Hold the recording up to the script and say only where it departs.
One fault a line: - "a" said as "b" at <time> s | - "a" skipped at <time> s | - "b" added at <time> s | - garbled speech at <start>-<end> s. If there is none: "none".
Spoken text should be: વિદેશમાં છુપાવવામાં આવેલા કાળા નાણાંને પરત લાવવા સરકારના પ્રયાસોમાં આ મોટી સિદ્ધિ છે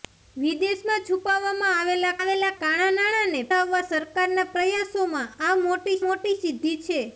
- "આવેલા" added at 2.2 s
- "પરત" skipped at 3.4 s
- "મોટી" added at 6.0 s